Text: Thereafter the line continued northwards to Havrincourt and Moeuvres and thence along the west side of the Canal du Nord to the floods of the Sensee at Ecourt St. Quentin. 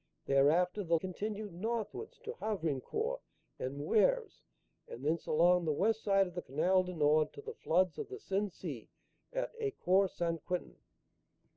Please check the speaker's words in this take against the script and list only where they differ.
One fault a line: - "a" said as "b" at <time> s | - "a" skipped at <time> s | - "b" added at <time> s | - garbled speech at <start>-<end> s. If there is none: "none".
- "line" skipped at 1.0 s